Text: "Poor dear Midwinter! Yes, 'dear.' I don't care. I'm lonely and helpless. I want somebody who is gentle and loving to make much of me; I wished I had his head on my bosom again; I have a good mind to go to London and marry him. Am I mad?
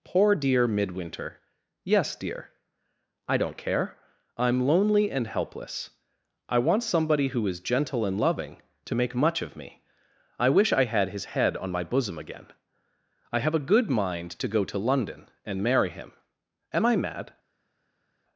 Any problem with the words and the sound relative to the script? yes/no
yes